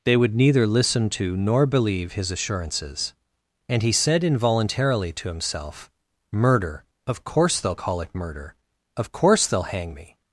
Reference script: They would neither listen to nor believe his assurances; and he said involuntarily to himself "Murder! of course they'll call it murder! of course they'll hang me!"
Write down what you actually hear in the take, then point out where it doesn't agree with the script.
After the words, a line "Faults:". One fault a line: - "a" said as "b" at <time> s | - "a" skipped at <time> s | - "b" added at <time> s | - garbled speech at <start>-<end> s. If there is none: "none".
They would neither listen to nor believe his assurances; and he said involuntarily to himself "Murder! of course they'll call it murder! of course they'll hang me!"
Faults:
none